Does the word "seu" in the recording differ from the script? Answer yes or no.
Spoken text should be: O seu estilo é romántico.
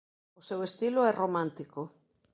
no